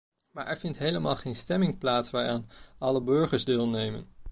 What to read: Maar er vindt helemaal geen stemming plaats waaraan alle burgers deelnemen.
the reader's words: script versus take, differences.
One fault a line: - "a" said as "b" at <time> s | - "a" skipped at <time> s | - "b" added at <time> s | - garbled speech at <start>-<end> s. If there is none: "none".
none